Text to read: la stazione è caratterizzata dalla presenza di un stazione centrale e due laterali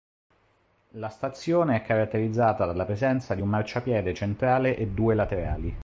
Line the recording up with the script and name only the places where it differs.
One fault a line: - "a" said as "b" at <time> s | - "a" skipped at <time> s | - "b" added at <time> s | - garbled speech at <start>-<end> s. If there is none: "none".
- "stazione" said as "marciapiede" at 3.5 s